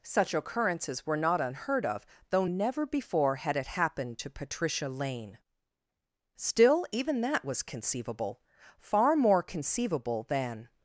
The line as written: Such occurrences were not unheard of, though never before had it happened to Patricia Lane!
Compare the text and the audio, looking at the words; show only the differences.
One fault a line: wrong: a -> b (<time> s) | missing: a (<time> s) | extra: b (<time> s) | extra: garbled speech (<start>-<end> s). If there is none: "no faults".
extra: Still even that was conceivable far more conceivable than (6.3 s)